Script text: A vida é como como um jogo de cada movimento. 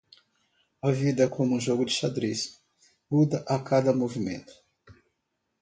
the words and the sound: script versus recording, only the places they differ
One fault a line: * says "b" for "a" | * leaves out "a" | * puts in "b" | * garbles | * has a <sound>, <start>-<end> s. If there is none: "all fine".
* leaves out "como"
* puts in "xadrez muda a"